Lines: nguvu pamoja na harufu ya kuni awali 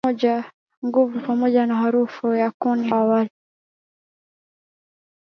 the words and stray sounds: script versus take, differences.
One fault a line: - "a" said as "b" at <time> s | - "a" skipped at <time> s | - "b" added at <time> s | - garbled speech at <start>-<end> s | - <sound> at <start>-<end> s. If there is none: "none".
none